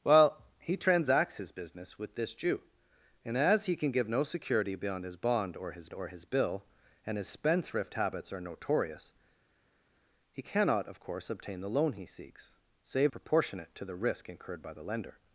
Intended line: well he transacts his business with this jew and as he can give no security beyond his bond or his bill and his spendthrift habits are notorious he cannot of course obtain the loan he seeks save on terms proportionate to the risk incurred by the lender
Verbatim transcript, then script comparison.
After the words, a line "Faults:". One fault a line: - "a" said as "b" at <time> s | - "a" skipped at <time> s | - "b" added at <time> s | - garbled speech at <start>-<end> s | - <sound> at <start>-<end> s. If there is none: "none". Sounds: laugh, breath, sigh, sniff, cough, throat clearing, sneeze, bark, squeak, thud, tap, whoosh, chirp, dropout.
well he transacts his business with this jew and as he can give no security beyond his bond or his or his bill and his spendthrift habits are notorious he cannot of course obtain the loan he seeks save proportionate to the risk incurred by the lender
Faults:
- "or his" added at 5.9 s
- "on terms" skipped at 13.1 s